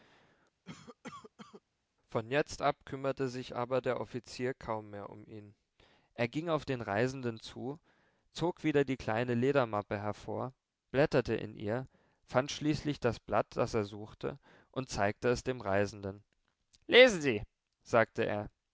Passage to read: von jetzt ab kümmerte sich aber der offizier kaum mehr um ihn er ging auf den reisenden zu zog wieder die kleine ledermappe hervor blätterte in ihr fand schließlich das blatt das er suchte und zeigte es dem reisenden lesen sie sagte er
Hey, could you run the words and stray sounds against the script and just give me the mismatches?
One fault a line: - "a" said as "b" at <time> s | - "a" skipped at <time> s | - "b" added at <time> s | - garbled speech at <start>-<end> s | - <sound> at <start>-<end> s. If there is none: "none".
- cough at 0.6-1.6 s